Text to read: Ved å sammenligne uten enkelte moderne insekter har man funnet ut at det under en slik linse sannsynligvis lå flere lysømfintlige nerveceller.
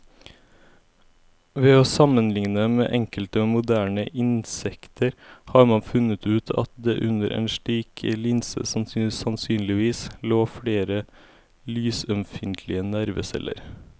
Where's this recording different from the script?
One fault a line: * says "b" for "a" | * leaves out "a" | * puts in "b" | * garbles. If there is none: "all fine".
* says "med" for "uten"